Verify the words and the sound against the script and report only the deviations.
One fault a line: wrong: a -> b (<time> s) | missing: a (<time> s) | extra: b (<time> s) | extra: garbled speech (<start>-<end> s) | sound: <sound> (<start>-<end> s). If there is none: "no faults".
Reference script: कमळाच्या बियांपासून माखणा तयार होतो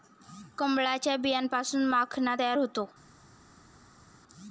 no faults